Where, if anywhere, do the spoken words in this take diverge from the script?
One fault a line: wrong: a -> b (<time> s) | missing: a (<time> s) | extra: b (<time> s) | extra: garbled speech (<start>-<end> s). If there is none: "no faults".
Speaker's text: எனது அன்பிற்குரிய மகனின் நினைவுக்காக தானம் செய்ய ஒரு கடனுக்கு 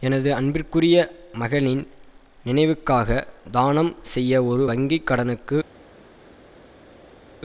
extra: வங்கி (4.6 s)